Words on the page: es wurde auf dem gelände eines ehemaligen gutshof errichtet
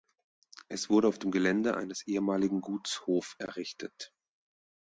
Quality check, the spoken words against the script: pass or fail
pass